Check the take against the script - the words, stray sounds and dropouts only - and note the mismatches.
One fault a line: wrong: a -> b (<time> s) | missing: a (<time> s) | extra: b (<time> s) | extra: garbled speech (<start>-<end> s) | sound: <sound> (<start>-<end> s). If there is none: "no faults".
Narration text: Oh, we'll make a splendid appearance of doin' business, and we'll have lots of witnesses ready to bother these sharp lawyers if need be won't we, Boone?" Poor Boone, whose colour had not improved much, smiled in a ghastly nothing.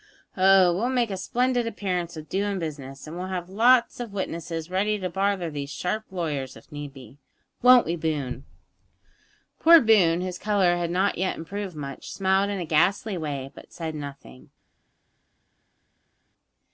extra: yet (11.2 s)
extra: way but said (13.2 s)